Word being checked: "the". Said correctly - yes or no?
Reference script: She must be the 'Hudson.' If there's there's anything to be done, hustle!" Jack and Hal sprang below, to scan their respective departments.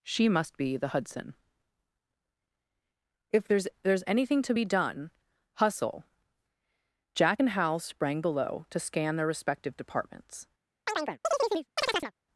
yes